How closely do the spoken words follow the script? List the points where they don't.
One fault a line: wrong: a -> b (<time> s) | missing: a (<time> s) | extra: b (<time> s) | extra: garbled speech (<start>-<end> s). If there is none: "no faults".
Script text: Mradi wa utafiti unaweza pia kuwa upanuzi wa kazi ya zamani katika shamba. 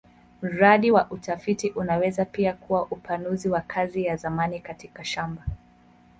no faults